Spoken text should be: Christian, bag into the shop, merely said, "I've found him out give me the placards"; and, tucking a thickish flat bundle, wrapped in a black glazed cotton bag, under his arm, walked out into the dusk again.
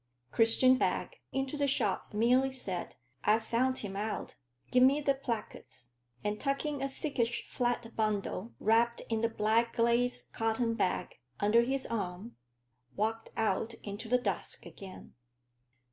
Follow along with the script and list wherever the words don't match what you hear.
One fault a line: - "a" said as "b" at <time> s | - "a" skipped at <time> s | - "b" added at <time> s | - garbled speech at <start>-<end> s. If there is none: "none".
none